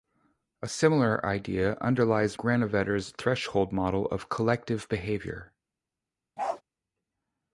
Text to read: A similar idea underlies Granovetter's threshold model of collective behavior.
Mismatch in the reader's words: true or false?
false